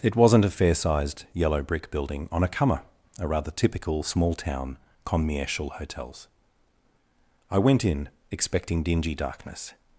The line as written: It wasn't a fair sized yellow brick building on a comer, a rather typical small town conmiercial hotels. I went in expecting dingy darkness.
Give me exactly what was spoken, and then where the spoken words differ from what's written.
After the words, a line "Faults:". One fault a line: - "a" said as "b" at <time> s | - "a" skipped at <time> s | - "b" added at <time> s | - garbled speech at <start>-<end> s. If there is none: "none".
It wasn't a fair sized yellow brick building on a comer, a rather typical small town conmiercial hotels. I went in expecting dingy darkness.
Faults:
none